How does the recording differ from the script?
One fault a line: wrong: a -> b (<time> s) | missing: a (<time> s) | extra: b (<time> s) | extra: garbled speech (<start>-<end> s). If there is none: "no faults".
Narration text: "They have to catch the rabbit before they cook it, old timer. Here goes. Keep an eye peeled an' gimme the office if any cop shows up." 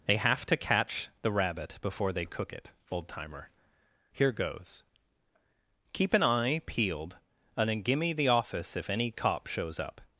wrong: an -> and then (7.6 s)